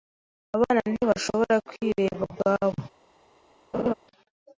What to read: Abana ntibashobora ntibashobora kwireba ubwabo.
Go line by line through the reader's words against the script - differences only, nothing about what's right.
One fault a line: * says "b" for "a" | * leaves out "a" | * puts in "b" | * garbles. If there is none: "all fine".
* leaves out "ntibashobora"